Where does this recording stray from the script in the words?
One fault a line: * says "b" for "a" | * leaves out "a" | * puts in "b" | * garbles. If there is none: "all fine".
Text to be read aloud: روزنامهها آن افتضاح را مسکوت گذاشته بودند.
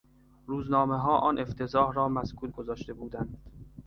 all fine